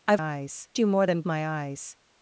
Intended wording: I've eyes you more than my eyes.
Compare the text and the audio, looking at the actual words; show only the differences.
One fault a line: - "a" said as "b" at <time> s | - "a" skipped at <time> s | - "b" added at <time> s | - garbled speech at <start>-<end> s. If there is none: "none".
none